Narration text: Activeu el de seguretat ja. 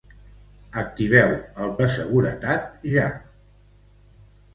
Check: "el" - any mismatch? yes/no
no